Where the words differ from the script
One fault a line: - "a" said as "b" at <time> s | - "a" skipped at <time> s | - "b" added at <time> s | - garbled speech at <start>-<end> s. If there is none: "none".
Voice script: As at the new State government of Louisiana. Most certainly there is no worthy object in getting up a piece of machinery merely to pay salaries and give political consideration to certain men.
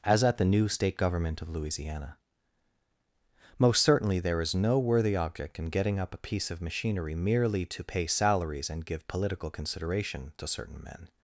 none